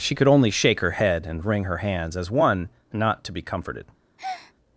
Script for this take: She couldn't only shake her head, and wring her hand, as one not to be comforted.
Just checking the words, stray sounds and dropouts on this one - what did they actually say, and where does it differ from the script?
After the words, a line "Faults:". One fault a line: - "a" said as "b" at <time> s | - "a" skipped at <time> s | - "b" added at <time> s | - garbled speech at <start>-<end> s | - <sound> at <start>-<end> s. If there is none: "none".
She could only shake her head, and wring her hands, as one not to be comforted.
Faults:
- "couldn't" said as "could" at 0.1 s
- "hand" said as "hands" at 1.8 s
- breath at 4.2-4.5 s